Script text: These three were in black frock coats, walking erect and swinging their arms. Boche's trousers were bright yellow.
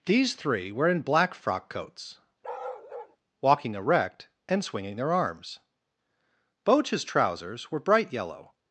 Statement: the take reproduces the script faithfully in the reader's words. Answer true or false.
true